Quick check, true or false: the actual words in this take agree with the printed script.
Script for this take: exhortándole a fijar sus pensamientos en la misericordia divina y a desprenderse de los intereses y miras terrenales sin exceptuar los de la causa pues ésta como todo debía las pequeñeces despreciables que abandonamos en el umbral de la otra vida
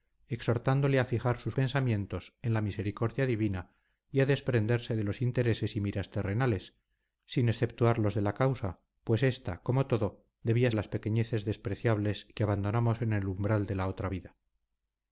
true